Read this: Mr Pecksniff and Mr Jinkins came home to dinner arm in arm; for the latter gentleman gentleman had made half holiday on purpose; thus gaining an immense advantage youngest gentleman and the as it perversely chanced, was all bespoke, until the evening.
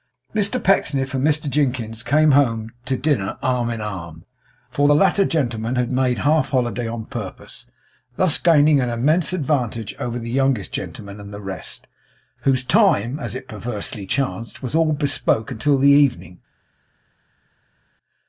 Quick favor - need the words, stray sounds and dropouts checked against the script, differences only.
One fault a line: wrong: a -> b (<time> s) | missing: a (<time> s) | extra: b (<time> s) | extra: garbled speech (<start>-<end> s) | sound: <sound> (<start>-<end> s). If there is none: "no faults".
missing: gentleman (5.7 s)
extra: over the (10.0 s)
extra: rest whose time (11.4 s)